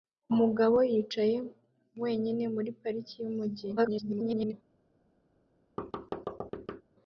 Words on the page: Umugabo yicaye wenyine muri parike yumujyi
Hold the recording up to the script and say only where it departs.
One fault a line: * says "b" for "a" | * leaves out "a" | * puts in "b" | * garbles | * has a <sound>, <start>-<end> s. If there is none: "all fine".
* garbles
* has a thud, 5.8-6.8 s